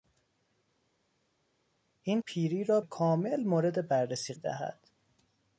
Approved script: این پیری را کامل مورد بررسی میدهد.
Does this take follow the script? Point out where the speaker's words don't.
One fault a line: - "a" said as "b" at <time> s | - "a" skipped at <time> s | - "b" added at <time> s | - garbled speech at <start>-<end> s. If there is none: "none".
none